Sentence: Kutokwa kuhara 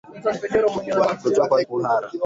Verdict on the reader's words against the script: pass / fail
pass